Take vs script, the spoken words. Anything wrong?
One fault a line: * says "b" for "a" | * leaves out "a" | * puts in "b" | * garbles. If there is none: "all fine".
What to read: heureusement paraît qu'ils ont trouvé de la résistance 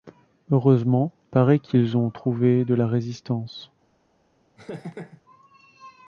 all fine